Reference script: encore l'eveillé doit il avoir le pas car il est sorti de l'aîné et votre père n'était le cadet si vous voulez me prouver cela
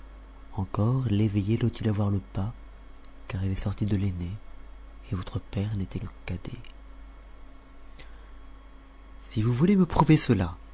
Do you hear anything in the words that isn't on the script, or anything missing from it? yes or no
no